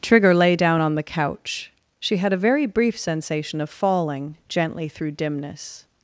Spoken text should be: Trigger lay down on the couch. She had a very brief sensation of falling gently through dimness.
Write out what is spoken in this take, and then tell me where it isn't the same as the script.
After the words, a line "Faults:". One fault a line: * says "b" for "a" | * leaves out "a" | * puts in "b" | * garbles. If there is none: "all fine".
Trigger lay down on the couch. She had a very brief sensation of falling gently through dimness.
Faults:
all fine